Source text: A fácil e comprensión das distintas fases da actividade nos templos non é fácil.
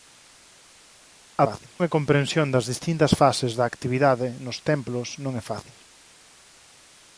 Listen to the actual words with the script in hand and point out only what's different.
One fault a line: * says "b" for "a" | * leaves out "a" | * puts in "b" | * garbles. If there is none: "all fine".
all fine